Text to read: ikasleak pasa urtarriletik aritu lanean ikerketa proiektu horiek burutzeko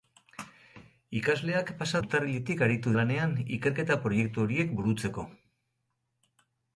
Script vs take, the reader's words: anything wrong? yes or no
no